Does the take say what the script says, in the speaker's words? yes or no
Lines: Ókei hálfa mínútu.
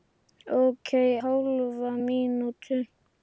yes